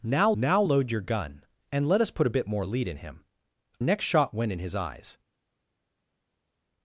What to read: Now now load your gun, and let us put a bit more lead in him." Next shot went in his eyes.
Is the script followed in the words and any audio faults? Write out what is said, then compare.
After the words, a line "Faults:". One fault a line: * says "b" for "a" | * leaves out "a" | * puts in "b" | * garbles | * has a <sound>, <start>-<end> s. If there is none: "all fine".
Now now load your gun, and let us put a bit more lead in him." Next shot went in his eyes.
Faults:
all fine